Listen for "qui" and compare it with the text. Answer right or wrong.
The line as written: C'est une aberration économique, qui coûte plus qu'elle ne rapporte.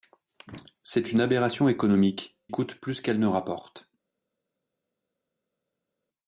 wrong